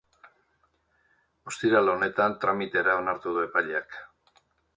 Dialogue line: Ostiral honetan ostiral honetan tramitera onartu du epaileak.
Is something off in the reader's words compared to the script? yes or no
yes